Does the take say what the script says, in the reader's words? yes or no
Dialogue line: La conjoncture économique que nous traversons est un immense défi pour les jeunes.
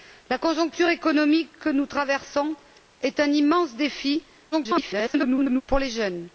no